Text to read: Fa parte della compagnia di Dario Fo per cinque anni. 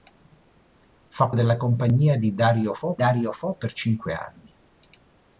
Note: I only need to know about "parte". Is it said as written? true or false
false